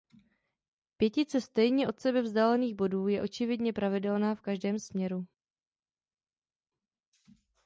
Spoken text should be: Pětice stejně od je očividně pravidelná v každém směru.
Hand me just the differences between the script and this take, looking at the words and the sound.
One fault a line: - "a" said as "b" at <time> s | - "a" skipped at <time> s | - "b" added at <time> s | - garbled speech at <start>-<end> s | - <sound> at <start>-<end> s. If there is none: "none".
- "sebe vzdálených bodů" added at 2.0 s